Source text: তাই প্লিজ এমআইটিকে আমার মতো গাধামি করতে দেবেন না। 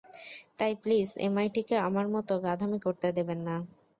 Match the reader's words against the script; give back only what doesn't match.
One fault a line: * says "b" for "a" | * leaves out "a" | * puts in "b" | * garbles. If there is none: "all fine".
all fine